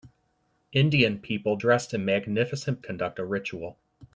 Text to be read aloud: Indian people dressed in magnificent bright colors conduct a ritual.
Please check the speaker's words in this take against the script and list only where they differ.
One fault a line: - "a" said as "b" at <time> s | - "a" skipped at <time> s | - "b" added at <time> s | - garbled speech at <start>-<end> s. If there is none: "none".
- "bright colors" skipped at 2.8 s